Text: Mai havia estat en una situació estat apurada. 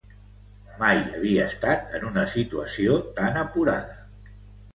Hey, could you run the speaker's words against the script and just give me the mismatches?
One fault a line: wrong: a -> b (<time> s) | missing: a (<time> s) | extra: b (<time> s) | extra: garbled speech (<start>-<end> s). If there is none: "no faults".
wrong: estat -> tan (3.2 s)